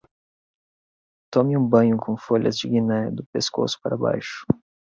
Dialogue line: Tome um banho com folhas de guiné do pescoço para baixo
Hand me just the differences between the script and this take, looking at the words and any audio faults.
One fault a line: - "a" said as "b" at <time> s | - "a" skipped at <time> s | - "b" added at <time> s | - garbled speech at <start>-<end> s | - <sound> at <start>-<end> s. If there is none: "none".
none